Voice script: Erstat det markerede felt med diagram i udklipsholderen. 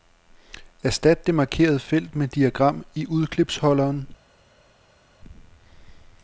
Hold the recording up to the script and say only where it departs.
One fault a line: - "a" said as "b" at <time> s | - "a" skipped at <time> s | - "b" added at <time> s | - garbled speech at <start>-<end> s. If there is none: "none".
none